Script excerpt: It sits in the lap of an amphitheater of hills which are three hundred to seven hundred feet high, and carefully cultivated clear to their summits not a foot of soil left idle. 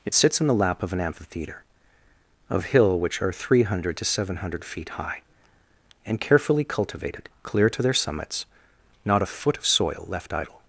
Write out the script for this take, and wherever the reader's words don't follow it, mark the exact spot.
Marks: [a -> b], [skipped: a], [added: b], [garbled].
It sits in the lap of an amphitheater of [hills -> hill] which are three hundred to seven hundred feet high, and carefully cultivated clear to their summits not a foot of soil left idle.